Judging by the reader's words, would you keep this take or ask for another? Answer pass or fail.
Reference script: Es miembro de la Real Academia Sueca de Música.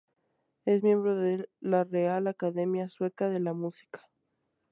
fail